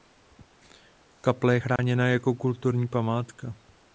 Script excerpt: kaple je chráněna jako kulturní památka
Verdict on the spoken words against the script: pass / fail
pass